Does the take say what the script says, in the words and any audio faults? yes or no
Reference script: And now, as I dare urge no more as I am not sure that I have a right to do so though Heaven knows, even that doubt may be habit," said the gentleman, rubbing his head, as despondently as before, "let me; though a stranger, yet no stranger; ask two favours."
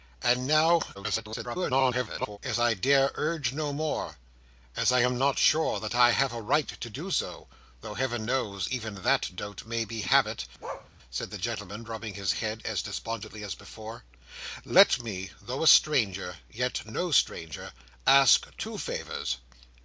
no